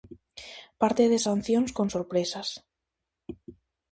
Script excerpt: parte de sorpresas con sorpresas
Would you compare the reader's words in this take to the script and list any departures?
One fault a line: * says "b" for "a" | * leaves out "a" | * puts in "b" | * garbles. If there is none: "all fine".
* says "sancións" for "sorpresas"